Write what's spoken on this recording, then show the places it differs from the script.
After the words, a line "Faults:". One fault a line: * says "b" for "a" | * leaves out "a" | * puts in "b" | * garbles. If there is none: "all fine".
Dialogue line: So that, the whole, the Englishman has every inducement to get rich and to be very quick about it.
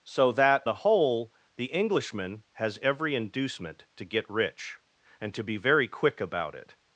So that, the whole, the Englishman has every inducement to get rich and to be very quick about it.
Faults:
all fine